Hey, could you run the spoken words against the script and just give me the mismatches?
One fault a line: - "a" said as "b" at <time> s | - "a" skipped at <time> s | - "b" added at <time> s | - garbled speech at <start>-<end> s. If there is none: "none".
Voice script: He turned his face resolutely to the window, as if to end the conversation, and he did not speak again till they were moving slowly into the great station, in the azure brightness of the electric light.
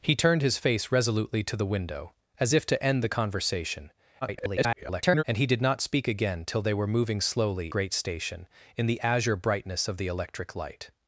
- garbled speech at 4.2-5.2 s
- "into the" skipped at 7.7 s